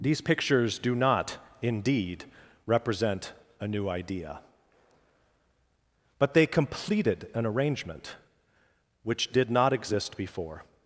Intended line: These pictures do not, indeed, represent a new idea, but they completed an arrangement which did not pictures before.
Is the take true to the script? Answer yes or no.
no